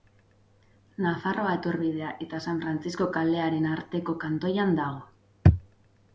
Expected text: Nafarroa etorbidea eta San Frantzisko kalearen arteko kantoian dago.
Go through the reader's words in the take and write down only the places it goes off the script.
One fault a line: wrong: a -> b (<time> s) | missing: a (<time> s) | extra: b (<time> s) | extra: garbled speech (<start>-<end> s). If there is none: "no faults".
no faults